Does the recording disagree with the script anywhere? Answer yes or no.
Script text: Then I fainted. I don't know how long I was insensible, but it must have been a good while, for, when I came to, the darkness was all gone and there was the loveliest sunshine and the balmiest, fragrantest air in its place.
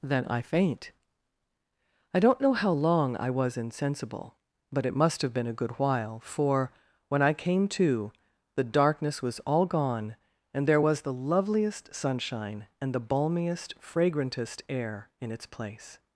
yes